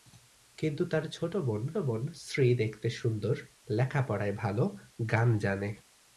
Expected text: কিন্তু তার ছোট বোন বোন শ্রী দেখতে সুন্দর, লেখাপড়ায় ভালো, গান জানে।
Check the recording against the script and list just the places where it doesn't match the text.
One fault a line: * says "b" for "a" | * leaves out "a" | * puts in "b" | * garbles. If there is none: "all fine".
all fine